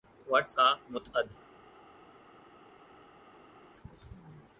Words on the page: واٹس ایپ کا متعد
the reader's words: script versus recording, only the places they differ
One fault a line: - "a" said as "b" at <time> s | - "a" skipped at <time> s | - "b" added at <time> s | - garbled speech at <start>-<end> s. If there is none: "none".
- "ایپ" skipped at 0.5 s